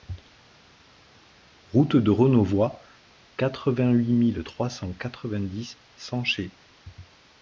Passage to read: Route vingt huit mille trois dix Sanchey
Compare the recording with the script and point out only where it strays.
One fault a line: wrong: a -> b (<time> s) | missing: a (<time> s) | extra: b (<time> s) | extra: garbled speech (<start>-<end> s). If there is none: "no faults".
extra: de Renauvoid quatre (2.0 s)
extra: cent quatre vingt (4.7 s)